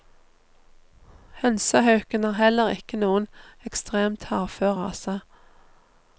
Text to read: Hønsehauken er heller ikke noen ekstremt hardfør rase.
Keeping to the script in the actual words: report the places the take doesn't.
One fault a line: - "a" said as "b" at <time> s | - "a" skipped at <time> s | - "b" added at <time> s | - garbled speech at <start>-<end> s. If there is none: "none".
none